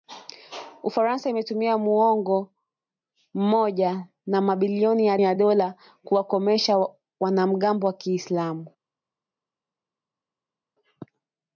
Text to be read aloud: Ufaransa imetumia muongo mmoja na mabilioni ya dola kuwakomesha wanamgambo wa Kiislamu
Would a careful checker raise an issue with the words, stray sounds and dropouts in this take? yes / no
yes